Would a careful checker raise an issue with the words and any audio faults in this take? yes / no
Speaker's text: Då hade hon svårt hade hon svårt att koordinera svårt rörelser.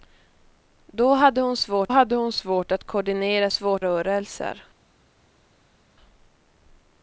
no